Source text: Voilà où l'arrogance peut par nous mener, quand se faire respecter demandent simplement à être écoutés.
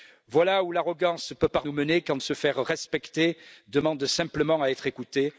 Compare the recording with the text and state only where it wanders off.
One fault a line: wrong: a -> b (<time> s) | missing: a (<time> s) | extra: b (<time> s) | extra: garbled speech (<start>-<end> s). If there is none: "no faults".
no faults